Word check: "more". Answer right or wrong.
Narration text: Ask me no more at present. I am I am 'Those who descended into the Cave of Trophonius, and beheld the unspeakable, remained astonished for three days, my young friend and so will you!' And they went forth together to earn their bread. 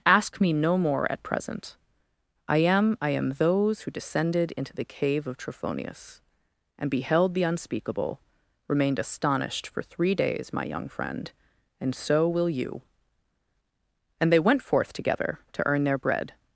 right